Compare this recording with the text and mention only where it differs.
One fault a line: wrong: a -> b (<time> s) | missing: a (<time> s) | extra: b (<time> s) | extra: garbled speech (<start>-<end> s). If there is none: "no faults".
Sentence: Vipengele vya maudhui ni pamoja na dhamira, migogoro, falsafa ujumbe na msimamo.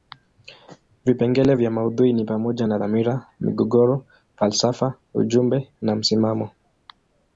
no faults